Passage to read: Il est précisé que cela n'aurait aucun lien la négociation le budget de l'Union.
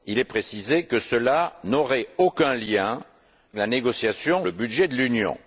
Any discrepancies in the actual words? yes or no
no